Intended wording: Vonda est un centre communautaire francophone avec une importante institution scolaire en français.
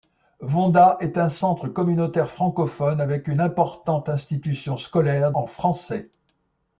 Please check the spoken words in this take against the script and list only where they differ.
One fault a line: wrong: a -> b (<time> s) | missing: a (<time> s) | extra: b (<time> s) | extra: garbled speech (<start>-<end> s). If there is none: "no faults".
no faults